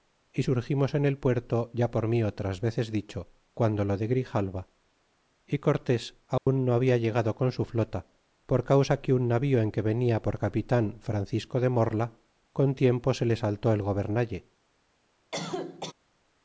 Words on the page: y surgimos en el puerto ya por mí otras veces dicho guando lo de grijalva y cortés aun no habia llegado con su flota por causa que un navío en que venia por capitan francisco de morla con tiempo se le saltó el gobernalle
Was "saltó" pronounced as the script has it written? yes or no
yes